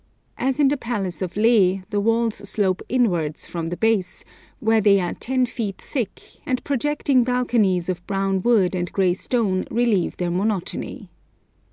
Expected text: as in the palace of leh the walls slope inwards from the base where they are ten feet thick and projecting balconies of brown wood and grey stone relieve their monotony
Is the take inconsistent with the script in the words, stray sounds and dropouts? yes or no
no